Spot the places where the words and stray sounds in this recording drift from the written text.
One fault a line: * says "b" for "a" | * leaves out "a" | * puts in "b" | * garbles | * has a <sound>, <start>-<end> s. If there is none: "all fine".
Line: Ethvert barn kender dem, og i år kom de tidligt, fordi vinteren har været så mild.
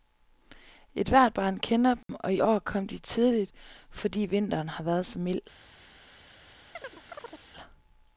* has a dropout, 2.0-2.1 s
* has a chirp, 6.7-7.4 s